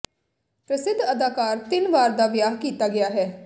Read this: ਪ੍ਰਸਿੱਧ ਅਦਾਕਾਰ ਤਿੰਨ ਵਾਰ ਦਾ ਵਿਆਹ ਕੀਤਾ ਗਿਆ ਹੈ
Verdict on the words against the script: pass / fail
pass